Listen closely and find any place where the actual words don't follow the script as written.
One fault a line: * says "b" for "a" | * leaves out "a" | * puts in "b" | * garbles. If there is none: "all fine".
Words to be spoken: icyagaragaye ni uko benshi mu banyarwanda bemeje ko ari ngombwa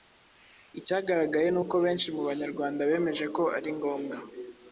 all fine